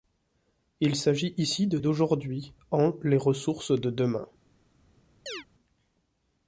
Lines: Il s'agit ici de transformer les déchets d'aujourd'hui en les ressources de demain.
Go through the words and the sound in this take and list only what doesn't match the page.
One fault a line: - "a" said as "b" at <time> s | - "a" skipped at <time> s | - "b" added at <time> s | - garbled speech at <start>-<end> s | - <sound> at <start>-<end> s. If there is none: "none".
- "transformer les déchets" skipped at 1.8 s
- chirp at 5.3-5.4 s